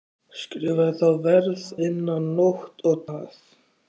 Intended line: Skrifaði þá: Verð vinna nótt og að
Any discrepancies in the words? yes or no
no